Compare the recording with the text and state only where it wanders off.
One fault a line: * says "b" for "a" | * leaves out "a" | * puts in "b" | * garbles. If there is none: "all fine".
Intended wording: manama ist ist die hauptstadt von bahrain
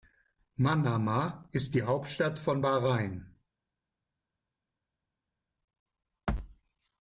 * leaves out "ist"